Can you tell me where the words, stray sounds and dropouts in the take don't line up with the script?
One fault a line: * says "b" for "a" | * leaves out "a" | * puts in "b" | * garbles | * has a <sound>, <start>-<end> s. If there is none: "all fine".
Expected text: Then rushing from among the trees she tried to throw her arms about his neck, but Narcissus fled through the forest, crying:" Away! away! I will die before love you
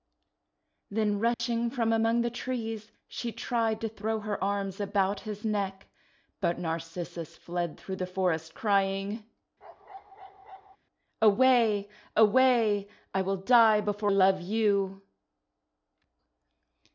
* has a dropout, 1.3-1.4 s
* has a bark, 9.6-10.8 s